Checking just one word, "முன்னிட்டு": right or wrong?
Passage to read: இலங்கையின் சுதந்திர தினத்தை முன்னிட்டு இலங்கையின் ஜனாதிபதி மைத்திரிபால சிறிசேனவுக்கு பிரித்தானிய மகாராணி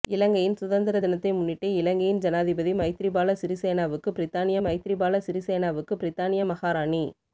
right